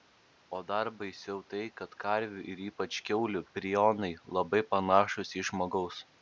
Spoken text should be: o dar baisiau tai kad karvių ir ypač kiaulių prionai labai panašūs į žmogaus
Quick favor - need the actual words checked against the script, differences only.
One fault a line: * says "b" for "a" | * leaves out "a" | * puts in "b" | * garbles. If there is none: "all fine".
all fine